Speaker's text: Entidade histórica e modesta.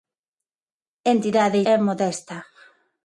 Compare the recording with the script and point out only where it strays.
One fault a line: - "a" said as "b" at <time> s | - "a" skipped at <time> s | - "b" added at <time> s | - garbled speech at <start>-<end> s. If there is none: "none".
- "histórica" skipped at 1.6 s